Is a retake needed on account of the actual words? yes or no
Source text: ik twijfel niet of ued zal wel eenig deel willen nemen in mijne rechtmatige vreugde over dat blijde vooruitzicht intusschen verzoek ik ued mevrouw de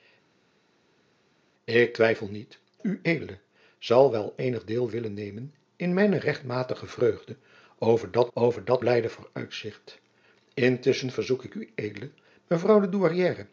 yes